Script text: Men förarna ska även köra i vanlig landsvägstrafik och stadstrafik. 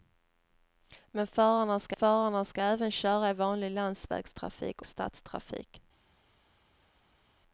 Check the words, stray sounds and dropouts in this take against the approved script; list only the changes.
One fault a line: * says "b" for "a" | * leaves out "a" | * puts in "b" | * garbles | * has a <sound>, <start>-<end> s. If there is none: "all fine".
* puts in "förarna ska"
* leaves out "och"